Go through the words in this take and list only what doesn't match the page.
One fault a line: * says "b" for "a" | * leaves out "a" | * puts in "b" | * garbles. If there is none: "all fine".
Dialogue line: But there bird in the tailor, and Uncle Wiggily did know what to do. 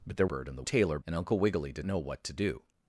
all fine